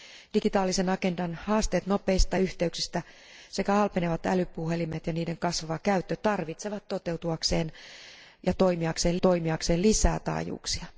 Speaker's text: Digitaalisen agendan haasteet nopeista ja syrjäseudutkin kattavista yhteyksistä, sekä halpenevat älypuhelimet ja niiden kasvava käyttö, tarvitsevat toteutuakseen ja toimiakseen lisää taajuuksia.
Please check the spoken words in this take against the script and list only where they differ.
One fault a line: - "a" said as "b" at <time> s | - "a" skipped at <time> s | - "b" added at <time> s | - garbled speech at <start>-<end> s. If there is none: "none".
- "ja syrjäseudutkin kattavista" skipped at 2.4 s
- "toimiakseen" added at 9.2 s